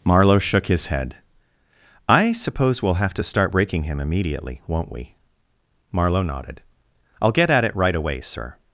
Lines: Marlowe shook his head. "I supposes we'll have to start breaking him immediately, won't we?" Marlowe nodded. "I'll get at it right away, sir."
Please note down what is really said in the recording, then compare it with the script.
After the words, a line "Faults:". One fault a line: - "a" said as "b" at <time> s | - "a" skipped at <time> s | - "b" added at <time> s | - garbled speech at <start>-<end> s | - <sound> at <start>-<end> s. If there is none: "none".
Marlowe shook his head. "I suppose we'll have to start breaking him immediately, won't we?" Marlowe nodded. "I'll get at it right away, sir."
Faults:
- "supposes" said as "suppose" at 2.3 s